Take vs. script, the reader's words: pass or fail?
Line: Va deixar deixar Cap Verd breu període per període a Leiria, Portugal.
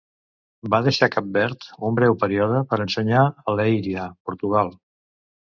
fail